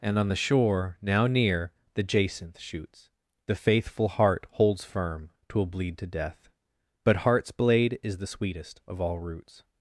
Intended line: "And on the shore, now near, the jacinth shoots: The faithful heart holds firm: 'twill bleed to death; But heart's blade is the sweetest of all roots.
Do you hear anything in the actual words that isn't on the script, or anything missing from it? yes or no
no